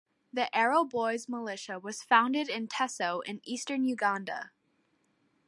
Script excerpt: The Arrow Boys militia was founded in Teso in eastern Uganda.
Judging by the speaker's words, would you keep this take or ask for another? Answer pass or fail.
pass